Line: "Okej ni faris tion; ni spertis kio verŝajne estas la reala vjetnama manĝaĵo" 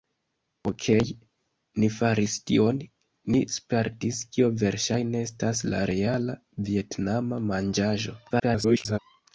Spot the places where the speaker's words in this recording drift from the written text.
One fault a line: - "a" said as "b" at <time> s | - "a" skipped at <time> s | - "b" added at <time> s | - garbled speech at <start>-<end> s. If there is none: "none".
- garbled speech at 8.3-9.0 s